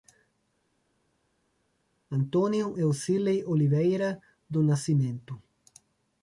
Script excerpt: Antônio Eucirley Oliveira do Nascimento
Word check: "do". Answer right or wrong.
right